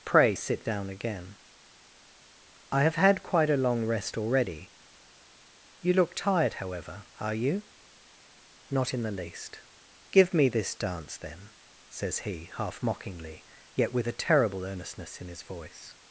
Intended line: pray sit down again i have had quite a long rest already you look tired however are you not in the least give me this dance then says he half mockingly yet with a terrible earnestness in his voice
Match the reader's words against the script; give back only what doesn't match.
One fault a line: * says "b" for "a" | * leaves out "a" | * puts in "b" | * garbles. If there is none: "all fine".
all fine